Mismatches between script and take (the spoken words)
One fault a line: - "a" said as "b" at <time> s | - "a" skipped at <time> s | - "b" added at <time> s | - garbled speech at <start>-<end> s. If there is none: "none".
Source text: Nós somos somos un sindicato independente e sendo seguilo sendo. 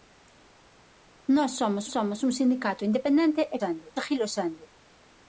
none